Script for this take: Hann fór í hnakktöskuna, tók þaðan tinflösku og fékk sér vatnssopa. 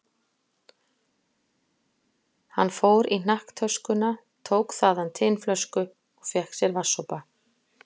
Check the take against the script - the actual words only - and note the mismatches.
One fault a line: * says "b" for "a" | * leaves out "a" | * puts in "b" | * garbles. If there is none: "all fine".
all fine